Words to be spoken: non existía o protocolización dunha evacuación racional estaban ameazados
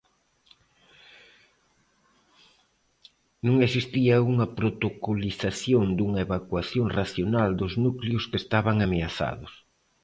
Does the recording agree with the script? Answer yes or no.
no